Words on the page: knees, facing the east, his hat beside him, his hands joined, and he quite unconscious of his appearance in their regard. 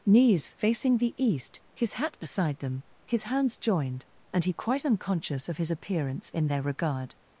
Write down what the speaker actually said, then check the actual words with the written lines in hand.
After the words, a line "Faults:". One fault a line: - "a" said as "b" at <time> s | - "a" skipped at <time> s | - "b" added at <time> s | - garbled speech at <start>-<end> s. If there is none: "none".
knees, facing the east, his hat beside them, his hands joined, and he quite unconscious of his appearance in their regard.
Faults:
- "him" said as "them" at 2.6 s